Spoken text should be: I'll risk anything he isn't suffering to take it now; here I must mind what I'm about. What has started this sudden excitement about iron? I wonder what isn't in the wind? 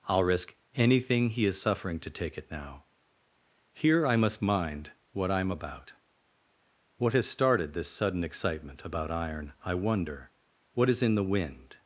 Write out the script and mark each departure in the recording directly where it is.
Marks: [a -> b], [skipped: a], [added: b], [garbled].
I'll risk anything he [isn't -> is] suffering to take it now; here I must mind what I'm about. What has started this sudden excitement about iron? I wonder what [isn't -> is] in the wind?